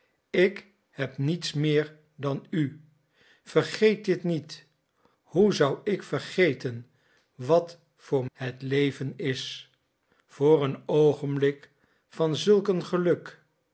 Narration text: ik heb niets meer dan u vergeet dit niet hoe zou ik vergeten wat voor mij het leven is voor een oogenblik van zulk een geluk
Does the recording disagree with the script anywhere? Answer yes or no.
yes